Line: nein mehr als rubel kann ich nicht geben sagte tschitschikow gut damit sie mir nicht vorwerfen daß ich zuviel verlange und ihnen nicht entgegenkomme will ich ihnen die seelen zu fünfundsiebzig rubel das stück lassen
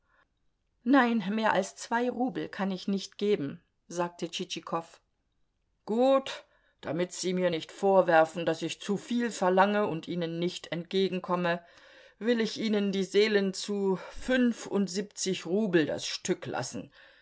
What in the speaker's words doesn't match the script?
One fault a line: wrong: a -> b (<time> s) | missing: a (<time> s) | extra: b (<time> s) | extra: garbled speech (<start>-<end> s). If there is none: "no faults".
extra: zwei (1.8 s)